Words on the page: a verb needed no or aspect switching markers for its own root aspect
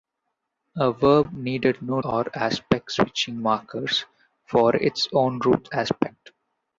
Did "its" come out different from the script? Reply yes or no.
no